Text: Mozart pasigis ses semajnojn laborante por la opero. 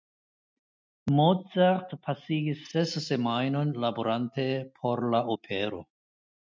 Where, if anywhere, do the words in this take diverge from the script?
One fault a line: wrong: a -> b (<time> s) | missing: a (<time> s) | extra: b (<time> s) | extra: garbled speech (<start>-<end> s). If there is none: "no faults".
no faults